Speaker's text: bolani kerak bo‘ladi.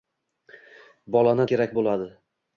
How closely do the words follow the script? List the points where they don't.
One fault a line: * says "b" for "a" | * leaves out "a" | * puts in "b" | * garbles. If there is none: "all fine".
all fine